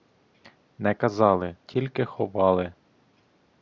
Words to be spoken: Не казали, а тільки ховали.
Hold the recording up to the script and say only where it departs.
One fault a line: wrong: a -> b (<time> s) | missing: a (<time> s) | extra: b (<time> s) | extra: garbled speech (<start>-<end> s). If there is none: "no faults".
missing: а (1.6 s)